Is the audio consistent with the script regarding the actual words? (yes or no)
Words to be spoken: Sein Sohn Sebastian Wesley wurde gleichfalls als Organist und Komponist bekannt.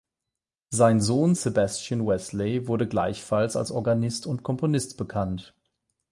yes